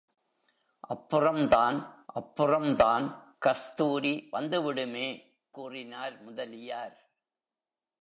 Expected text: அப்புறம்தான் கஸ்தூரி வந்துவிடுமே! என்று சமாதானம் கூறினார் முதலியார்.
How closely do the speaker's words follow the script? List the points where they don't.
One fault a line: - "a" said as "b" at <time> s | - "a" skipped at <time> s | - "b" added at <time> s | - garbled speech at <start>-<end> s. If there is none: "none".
- "அப்புறம்தான்" added at 2.1 s
- "என்று சமாதானம்" skipped at 5.1 s